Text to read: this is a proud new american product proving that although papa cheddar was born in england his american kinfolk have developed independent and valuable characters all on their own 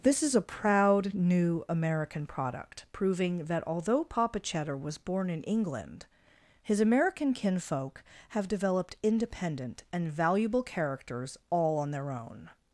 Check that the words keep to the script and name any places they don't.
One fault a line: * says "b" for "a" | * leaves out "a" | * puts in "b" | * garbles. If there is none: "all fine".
all fine